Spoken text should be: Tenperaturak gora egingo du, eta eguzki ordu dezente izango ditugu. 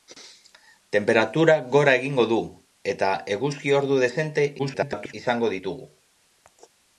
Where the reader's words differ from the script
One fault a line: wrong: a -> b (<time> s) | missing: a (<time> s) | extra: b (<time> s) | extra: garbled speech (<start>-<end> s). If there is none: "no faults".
extra: garbled speech (4.6-5.1 s)